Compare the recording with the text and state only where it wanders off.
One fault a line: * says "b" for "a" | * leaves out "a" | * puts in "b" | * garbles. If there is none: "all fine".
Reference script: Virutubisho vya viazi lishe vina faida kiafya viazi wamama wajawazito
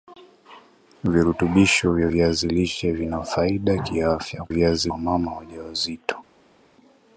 all fine